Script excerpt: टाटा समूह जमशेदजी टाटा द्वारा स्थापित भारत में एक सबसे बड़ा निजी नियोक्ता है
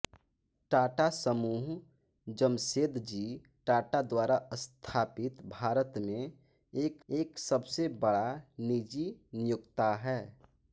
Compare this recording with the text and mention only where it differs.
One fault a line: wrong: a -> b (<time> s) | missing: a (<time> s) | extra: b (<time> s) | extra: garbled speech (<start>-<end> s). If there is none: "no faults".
extra: एक (7.1 s)